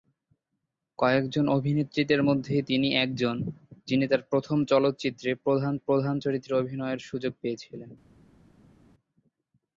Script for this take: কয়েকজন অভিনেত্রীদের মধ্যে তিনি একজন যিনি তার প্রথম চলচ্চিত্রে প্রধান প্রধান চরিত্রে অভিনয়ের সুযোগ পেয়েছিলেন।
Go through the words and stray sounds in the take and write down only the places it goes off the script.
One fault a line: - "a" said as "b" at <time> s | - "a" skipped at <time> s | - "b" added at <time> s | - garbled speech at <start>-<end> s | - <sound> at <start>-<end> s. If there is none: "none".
none